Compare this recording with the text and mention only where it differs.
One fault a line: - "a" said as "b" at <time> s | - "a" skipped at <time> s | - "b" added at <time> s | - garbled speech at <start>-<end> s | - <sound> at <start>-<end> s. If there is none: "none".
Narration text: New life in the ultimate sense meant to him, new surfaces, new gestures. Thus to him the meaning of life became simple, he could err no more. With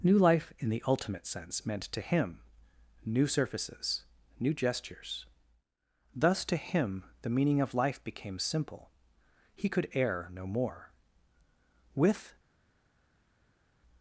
none